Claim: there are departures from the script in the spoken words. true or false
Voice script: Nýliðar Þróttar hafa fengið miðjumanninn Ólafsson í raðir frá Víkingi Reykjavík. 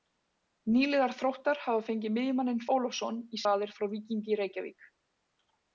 false